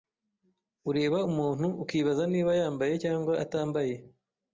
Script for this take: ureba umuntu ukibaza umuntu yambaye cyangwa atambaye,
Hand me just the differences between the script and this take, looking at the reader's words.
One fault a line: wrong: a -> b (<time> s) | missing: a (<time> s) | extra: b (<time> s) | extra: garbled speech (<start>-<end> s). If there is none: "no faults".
wrong: umuntu -> niba (2.3 s)